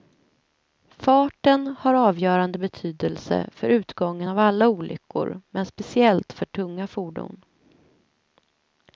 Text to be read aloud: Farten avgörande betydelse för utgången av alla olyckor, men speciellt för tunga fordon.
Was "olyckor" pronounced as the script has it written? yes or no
yes